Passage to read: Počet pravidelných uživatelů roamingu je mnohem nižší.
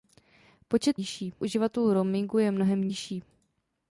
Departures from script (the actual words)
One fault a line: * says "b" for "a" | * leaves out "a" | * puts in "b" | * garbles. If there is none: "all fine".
* says "nižší" for "pravidelných"